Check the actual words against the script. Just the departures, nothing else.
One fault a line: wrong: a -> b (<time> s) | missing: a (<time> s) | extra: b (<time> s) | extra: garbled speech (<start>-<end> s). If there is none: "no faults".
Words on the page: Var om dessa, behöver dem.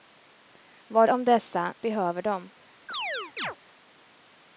no faults